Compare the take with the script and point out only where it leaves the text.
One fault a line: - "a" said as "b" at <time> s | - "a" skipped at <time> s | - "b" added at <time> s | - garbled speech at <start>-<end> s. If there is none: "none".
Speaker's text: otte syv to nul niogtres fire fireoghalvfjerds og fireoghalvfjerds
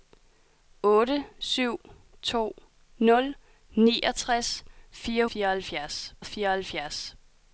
none